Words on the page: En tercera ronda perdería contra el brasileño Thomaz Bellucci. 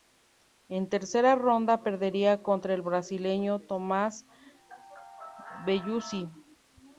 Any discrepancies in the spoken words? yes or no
no